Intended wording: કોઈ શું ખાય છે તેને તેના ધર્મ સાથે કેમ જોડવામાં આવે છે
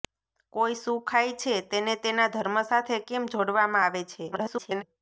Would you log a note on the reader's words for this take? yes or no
yes